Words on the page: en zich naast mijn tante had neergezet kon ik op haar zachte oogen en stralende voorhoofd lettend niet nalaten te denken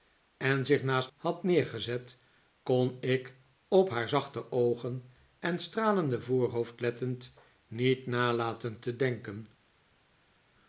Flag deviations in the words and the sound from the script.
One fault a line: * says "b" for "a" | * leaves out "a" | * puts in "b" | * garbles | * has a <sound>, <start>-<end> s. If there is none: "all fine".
* leaves out "mijn tante"